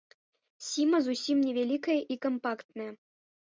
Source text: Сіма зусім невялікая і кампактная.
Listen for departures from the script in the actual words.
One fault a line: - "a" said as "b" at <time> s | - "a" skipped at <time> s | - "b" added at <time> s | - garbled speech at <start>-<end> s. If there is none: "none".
none